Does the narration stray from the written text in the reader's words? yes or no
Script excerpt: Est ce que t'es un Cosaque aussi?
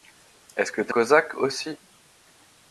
yes